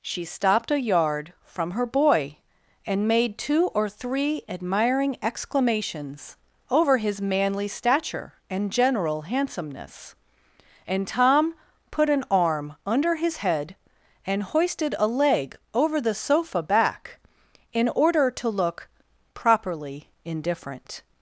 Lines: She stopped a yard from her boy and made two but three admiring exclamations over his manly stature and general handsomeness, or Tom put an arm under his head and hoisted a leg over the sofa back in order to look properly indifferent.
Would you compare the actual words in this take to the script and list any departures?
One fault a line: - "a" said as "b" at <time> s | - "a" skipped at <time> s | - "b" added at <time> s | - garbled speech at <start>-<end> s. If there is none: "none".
- "but" said as "or" at 3.7 s
- "or" said as "and" at 10.9 s